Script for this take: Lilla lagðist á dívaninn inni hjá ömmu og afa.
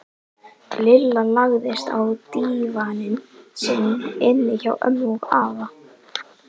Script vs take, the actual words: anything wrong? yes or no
yes